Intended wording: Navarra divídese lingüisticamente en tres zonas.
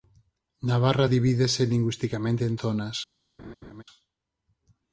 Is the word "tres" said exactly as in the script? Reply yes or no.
no